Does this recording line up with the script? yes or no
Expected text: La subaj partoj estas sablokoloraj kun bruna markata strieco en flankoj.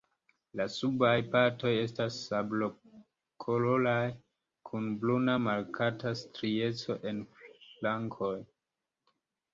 yes